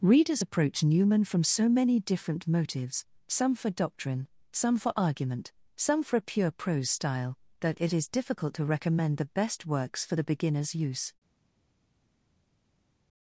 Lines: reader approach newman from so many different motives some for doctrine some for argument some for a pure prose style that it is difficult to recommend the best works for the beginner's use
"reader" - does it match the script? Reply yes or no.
no